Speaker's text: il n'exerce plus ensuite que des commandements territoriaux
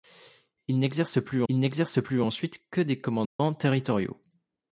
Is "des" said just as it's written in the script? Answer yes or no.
yes